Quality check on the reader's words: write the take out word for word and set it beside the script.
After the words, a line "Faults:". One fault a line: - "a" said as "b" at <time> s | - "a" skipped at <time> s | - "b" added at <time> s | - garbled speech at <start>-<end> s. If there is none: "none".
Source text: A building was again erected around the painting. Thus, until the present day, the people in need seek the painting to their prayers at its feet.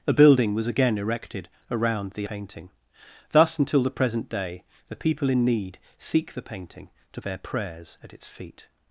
A building was again erected around the painting. Thus, until the present day, the people in need seek the painting to their prayers at its feet.
Faults:
none